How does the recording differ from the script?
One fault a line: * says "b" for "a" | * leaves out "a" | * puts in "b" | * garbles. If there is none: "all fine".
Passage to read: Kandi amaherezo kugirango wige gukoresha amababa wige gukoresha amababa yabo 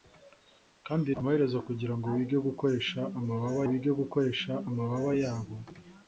all fine